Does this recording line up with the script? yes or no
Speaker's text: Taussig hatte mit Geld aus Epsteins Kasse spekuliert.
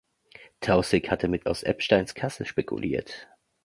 no